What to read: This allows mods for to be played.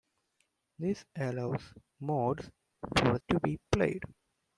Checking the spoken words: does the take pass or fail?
pass